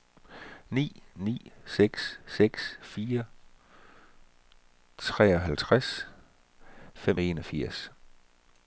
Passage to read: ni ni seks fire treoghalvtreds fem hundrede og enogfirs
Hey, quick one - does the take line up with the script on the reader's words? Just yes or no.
no